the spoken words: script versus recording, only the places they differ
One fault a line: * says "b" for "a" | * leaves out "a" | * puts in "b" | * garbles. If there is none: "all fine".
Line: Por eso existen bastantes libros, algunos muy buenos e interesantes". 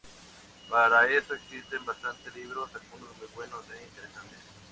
* says "Para" for "Por"